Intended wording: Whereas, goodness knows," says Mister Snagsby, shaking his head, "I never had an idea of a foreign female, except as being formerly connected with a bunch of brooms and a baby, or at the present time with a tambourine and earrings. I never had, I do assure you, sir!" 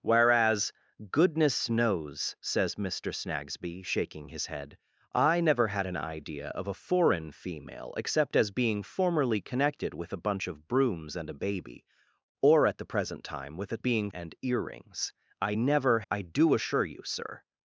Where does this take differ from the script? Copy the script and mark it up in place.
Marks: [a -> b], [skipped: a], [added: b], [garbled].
Whereas, goodness knows," says Mister Snagsby, shaking his head, "I never had an idea of a foreign female, except as being formerly connected with a bunch of brooms and a baby, or at the present time with a [tambourine -> being] and earrings. I never [skipped: had,] I do assure you, sir!"